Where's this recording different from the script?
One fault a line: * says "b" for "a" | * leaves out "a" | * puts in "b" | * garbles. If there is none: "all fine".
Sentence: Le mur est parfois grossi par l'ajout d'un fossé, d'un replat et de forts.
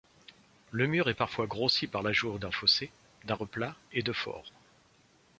all fine